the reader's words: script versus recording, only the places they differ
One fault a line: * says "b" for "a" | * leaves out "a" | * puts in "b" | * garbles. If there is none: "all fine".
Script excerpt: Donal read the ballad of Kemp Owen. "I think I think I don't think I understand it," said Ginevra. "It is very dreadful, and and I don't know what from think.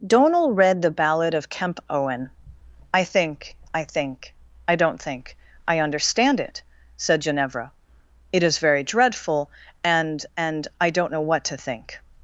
* says "to" for "from"